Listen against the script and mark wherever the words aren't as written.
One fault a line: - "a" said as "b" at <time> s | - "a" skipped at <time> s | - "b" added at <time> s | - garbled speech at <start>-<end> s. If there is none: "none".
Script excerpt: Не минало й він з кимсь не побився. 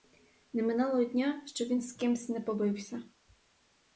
- "дня щоб" added at 1.1 s